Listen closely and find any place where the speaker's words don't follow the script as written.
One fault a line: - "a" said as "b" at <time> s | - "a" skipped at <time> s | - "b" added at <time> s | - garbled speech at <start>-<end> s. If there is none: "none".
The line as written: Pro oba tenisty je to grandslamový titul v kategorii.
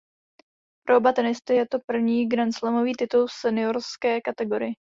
- "první" added at 1.9 s
- "seniorské" added at 3.3 s